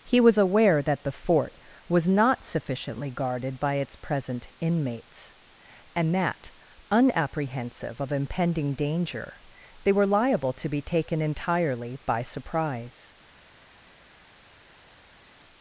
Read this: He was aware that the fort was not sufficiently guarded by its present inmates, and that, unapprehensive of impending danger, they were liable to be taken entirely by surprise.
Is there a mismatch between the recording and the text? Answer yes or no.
no